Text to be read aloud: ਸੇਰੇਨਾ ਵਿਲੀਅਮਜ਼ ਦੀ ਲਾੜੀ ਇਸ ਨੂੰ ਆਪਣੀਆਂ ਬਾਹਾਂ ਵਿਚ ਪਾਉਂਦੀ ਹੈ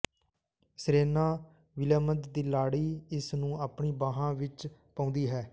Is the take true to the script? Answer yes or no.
yes